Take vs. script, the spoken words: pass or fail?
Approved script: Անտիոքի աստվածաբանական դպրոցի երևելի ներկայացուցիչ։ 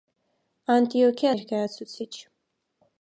fail